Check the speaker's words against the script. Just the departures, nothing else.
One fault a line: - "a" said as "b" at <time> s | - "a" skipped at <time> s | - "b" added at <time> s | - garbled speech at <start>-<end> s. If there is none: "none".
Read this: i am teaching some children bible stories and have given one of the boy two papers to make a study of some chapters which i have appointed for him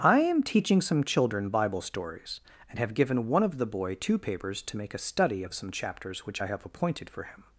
none